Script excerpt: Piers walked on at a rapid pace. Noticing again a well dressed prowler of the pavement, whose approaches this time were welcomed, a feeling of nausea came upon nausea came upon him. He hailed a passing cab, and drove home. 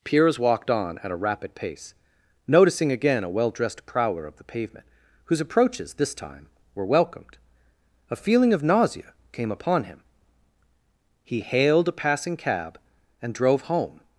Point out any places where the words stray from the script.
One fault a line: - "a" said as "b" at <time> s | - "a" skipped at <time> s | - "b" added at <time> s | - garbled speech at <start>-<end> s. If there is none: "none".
- "nausea came upon" skipped at 9.8 s